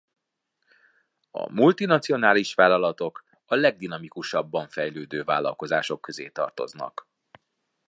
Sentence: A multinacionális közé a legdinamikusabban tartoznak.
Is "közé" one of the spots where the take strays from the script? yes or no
yes